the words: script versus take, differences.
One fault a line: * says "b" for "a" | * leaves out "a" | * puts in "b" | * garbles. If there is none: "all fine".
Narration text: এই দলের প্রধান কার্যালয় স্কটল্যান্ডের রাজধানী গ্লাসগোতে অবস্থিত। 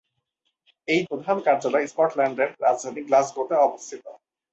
* leaves out "দলের"